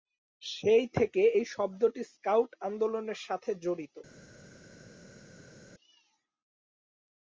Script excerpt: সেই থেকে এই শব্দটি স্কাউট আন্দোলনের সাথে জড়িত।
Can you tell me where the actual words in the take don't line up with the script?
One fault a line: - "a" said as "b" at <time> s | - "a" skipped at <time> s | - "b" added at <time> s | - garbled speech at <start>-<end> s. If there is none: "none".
none